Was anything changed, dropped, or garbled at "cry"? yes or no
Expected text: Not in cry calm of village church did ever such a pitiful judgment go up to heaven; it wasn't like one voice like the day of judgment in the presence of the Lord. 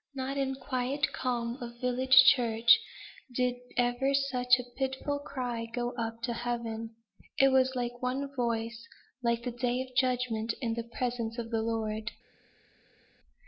yes